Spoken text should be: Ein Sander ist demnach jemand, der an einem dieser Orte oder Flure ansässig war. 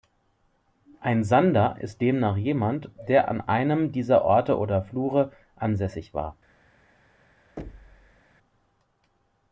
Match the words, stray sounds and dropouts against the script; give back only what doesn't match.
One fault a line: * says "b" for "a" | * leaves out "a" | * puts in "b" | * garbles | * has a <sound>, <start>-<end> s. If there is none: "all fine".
* has a thud, 7.6-8.2 s